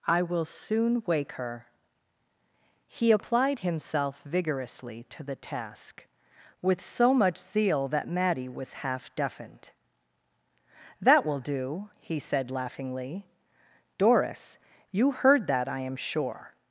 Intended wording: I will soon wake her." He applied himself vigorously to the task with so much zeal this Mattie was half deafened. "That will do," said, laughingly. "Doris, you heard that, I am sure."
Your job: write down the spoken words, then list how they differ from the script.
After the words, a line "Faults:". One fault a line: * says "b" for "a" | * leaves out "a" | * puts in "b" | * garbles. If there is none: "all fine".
I will soon wake her." He applied himself vigorously to the task with so much zeal that Mattie was half deafened. "That will do," he said, laughingly. "Doris, you heard that, I am sure."
Faults:
* says "that" for "this"
* puts in "he"